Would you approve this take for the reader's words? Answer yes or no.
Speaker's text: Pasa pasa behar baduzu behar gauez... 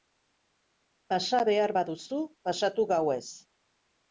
no